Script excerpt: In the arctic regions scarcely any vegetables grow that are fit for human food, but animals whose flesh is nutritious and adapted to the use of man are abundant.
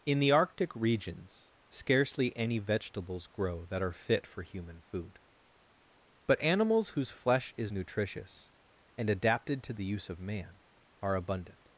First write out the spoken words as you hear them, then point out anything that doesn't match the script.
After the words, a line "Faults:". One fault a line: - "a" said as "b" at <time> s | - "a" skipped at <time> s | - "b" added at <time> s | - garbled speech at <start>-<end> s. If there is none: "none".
In the arctic regions scarcely any vegetables grow that are fit for human food, but animals whose flesh is nutritious and adapted to the use of man are abundant.
Faults:
none